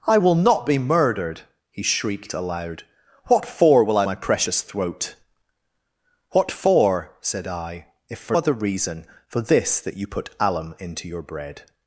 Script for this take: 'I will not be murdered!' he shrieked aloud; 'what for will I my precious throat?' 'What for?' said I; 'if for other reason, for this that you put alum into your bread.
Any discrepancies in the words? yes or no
no